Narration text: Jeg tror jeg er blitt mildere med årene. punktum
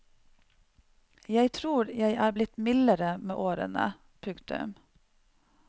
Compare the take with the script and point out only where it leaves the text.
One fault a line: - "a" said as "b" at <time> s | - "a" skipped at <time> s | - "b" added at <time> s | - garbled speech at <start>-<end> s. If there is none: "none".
none